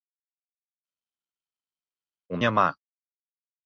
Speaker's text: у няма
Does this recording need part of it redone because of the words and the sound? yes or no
no